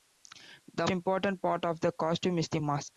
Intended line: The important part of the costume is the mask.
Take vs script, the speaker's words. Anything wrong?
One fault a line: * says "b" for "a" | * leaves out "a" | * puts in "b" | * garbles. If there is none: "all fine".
all fine